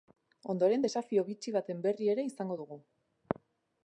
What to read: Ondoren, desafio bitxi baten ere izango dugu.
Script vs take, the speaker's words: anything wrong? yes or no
yes